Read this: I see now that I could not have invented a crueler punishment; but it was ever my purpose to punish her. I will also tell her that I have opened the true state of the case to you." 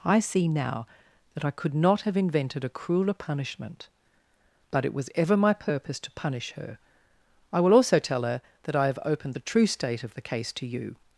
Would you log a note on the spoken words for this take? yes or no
no